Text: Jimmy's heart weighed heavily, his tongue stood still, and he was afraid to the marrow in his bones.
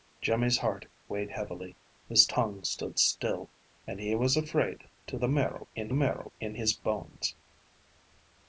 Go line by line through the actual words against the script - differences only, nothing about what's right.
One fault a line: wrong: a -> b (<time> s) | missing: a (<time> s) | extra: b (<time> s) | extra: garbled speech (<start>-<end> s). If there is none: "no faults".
extra: marrow in (5.9 s)